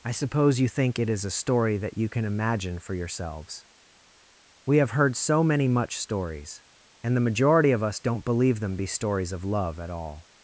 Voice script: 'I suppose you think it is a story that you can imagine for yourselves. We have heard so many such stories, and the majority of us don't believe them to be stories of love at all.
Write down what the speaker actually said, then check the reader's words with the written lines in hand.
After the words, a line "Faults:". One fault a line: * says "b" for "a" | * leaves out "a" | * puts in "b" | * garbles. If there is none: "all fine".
'I suppose you think it is a story that you can imagine for yourselves. We have heard so many much stories, and the majority of us don't believe them be stories of love at all.
Faults:
* says "much" for "such"
* leaves out "to"